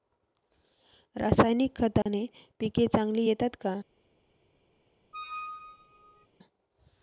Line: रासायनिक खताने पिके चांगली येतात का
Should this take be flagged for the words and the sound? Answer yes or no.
yes